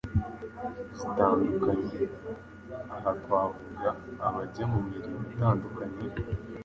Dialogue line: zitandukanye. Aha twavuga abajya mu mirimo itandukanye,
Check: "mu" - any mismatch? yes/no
no